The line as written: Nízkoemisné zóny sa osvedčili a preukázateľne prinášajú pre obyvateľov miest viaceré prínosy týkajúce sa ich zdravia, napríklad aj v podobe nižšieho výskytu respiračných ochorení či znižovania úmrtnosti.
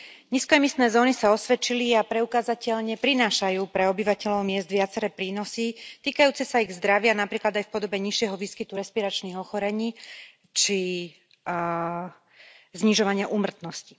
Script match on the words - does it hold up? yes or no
yes